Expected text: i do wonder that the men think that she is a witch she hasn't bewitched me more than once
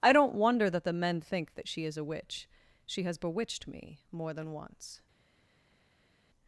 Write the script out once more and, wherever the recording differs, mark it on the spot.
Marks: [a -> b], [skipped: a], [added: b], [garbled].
i [do -> don't] wonder that the men think that she is a witch she [hasn't -> has] bewitched me more than once